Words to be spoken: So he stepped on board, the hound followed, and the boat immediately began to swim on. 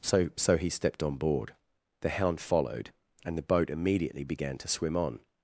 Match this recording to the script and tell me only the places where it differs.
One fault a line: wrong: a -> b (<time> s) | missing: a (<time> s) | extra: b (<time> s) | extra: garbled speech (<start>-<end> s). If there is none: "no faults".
extra: so (0.3 s)